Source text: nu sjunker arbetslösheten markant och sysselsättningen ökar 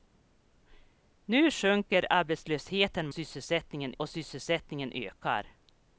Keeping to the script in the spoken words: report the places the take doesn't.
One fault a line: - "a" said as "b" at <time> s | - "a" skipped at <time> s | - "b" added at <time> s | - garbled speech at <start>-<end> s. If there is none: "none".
- "markant" said as "sysselsättningen" at 3.1 s